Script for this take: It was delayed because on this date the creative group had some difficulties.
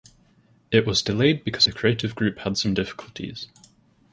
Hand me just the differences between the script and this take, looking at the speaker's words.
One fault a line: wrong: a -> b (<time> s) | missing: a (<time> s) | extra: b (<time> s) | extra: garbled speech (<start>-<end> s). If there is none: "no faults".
missing: on this date (1.7 s)